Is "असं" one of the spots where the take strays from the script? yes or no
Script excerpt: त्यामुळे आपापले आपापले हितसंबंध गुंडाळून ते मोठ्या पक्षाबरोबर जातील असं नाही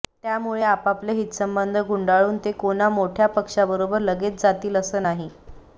no